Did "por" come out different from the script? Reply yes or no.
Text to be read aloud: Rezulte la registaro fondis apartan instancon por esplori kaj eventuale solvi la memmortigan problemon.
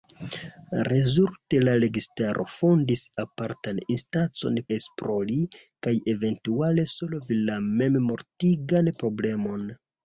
yes